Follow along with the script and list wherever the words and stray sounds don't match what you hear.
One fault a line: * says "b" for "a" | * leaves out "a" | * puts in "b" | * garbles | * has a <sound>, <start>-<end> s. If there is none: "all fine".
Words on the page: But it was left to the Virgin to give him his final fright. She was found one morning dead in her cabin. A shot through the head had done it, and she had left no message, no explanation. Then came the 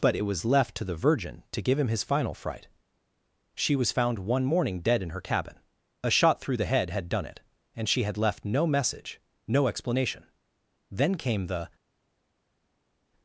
all fine